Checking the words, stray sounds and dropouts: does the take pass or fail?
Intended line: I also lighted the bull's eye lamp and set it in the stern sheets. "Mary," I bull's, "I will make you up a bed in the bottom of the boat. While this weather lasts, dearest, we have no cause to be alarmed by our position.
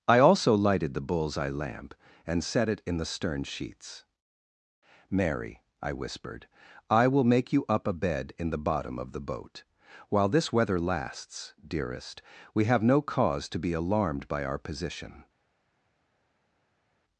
fail